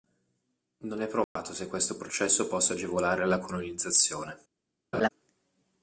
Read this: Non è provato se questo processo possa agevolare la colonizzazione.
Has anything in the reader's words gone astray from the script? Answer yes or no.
no